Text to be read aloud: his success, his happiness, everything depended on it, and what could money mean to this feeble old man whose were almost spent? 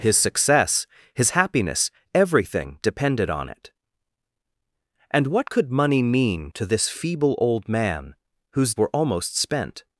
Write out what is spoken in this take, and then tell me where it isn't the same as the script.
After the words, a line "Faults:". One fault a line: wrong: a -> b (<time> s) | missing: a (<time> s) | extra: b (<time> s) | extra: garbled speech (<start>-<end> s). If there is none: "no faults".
his success, his happiness, everything depended on it, and what could money mean to this feeble old man whose were almost spent?
Faults:
no faults